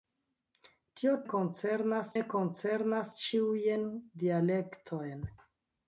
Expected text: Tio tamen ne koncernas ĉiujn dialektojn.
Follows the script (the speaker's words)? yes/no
no